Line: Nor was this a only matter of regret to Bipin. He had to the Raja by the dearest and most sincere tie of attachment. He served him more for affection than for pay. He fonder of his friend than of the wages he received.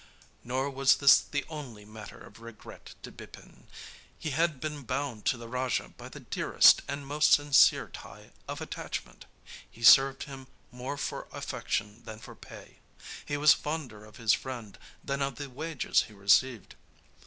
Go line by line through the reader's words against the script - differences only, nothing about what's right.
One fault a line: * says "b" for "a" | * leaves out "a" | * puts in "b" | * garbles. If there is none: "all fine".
* says "the" for "a"
* puts in "been bound"
* puts in "was"